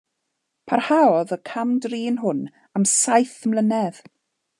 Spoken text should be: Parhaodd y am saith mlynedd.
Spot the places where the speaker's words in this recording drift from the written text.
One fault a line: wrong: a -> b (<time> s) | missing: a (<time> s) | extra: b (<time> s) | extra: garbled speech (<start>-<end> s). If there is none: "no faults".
extra: cam drin hwn (1.5 s)